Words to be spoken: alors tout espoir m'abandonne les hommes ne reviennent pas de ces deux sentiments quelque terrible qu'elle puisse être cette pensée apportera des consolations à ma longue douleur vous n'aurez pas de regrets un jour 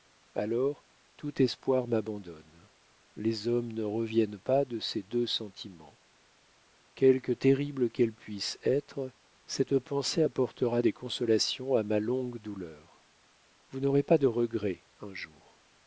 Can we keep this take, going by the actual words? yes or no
yes